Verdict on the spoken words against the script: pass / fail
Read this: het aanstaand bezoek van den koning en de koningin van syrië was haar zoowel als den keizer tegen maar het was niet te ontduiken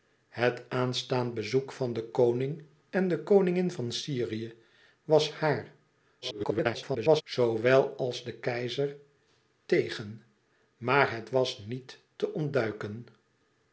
fail